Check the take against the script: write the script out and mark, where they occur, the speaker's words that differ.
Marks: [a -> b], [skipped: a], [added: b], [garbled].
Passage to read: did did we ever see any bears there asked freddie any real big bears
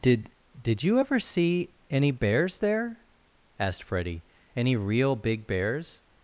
did did [we -> you] ever see any bears there asked freddie any real big bears